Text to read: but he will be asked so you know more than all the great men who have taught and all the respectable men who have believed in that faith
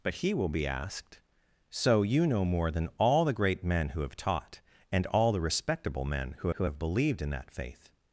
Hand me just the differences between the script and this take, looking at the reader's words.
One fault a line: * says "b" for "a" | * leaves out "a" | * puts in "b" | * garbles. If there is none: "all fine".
* puts in "who"